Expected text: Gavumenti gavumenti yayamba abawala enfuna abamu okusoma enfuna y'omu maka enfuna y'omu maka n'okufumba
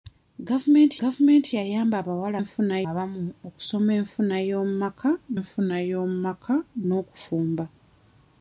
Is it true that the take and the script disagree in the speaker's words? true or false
false